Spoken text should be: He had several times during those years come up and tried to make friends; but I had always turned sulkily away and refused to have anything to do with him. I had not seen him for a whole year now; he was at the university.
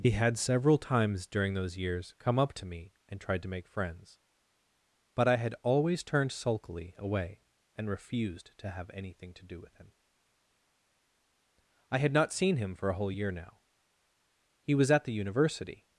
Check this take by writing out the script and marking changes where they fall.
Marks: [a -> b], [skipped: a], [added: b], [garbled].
He had several times during those years come up [added: to me] and tried to make friends; but I had always turned sulkily away and refused to have anything to do with him. I had not seen him for a whole year now; he was at the university.